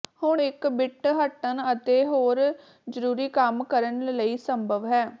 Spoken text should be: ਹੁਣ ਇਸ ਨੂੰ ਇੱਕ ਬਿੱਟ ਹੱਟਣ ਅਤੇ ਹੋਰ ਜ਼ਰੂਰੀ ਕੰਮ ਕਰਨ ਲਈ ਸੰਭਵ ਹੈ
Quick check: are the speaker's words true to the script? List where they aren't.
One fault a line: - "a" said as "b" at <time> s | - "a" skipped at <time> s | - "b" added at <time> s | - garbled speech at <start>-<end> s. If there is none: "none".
- "ਇਸ ਨੂੰ" skipped at 0.4 s